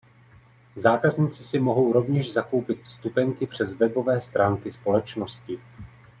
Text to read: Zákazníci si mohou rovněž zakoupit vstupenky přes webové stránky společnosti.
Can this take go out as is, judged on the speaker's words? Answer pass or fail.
pass